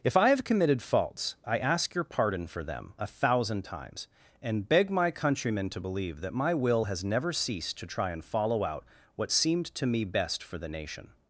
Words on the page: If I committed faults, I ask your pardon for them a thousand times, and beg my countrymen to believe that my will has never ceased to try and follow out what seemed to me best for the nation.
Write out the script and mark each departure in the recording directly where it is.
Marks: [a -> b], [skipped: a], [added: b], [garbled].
If I [added: have] committed faults, I ask your pardon for them a thousand times, and beg my countrymen to believe that my will has never ceased to try and follow out what seemed to me best for the nation.